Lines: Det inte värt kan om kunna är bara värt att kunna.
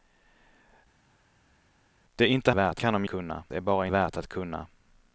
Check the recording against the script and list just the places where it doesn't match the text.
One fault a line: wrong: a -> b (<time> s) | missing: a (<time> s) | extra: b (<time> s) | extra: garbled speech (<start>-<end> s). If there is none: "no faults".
no faults